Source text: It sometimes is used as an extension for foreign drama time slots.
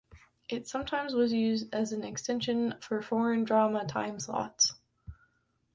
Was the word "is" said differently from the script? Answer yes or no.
yes